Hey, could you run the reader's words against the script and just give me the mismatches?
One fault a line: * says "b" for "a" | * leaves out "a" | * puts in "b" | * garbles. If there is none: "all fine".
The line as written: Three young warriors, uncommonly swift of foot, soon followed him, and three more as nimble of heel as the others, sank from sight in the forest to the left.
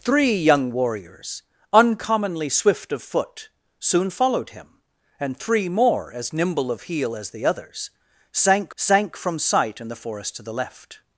* puts in "sank"